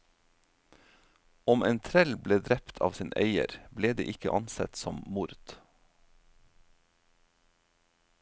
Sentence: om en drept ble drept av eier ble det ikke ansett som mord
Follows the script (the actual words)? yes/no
no